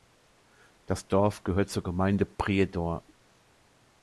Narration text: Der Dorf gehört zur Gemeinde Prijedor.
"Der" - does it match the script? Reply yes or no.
no